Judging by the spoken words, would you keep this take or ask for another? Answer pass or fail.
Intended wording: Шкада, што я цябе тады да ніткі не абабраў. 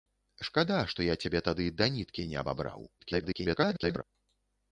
fail